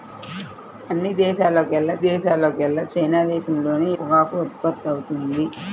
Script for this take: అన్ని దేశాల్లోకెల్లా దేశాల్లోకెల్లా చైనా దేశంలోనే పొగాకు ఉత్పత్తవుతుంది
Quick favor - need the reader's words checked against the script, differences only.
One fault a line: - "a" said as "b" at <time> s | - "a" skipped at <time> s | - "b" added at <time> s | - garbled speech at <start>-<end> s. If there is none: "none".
none